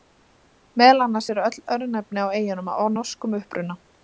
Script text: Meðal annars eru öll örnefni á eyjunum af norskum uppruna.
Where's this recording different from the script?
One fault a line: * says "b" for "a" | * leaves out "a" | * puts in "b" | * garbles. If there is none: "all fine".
all fine